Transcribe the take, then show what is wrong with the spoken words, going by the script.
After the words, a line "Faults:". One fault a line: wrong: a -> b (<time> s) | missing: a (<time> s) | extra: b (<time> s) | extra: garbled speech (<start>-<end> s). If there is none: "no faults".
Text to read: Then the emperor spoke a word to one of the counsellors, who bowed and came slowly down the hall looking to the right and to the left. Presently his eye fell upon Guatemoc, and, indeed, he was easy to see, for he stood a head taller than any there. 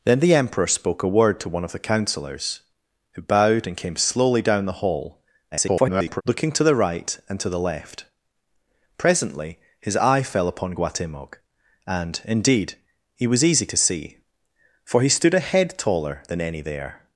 Then the emperor spoke a word to one of the counsellors, who bowed and came slowly down the hall [garbled] looking to the right and to the left. Presently his eye fell upon Guatemoc, and, indeed, he was easy to see, for he stood a head taller than any there.
Faults:
extra: garbled speech (5.5-6.2 s)